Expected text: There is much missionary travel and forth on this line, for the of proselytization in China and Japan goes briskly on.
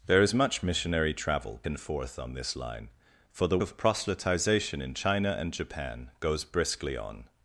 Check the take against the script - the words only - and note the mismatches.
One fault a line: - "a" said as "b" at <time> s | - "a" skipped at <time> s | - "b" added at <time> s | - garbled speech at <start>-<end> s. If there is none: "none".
none